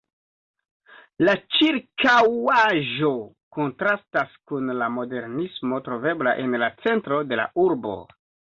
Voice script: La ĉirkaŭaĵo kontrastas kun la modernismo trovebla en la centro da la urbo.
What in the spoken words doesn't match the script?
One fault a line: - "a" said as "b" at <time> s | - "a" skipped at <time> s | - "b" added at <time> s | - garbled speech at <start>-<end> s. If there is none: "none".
- "da" said as "de" at 7.3 s